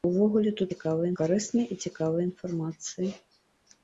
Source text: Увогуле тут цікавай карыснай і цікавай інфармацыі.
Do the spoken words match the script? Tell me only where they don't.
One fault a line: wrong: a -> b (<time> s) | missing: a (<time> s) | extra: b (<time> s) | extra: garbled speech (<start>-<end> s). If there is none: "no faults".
no faults